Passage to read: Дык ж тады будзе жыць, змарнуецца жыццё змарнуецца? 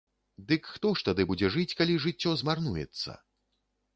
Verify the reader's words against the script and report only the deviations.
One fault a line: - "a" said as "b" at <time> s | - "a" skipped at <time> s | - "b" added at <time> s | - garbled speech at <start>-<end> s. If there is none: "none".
- "хто" added at 0.8 s
- "змарнуецца" said as "калі" at 1.8 s